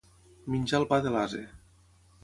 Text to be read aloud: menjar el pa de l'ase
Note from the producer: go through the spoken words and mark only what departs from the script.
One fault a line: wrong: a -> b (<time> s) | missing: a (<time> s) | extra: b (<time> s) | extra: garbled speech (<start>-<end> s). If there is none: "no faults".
no faults